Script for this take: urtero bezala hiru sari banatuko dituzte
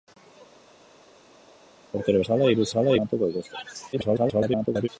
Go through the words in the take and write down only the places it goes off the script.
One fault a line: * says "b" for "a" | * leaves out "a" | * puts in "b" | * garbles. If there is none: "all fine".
* says "bezala" for "sari"
* garbles